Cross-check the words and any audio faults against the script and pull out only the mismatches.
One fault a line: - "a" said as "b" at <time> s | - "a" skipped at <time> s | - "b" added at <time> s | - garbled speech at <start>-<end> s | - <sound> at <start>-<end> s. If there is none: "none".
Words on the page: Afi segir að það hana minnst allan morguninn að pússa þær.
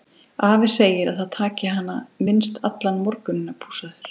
- "taki" added at 1.4 s